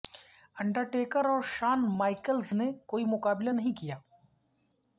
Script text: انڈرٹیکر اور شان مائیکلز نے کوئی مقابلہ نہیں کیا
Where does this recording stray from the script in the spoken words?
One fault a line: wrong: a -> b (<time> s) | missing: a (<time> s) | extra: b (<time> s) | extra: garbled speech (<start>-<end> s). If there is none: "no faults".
no faults